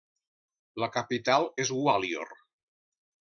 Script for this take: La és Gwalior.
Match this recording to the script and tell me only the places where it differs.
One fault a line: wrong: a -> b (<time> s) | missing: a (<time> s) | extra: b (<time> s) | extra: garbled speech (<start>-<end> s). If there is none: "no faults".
extra: capital (0.9 s)